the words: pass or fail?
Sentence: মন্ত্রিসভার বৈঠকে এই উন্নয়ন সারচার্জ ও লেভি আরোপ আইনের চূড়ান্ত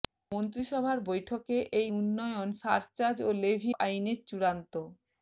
fail